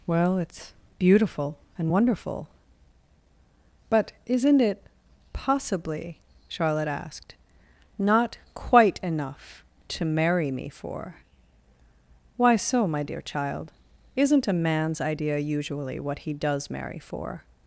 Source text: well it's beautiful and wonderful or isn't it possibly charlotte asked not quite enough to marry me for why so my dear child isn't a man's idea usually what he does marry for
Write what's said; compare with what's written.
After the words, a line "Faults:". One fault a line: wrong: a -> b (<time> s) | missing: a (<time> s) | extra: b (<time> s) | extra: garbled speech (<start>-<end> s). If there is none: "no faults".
well it's beautiful and wonderful but isn't it possibly charlotte asked not quite enough to marry me for why so my dear child isn't a man's idea usually what he does marry for
Faults:
wrong: or -> but (3.9 s)